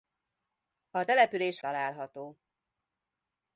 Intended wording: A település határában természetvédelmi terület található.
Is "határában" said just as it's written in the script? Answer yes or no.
no